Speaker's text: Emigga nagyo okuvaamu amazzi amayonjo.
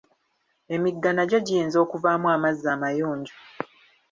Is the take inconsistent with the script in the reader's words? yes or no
yes